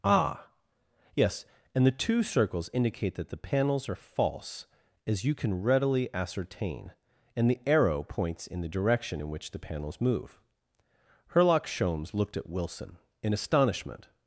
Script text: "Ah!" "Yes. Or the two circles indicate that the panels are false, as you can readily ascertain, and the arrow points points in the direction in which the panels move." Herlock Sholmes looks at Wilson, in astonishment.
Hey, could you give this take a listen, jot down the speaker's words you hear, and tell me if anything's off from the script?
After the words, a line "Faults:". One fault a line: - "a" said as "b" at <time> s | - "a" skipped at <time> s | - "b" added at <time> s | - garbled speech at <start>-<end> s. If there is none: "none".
"Ah!" "Yes. And the two circles indicate that the panels are false, as you can readily ascertain, and the arrow points in the direction in which the panels move." Herlock Sholmes looked at Wilson, in astonishment.
Faults:
- "Or" said as "And" at 1.7 s
- "points" skipped at 8.5 s
- "looks" said as "looked" at 12.1 s